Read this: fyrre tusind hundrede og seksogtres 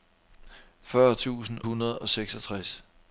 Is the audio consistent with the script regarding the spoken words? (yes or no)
yes